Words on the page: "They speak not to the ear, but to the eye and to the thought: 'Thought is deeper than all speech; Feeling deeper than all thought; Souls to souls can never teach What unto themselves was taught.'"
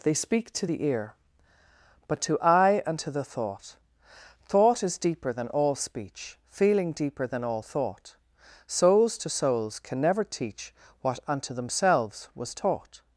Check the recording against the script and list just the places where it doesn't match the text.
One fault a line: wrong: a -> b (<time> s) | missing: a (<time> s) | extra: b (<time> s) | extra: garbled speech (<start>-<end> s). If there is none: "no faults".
missing: not (0.5 s)
missing: the (2.4 s)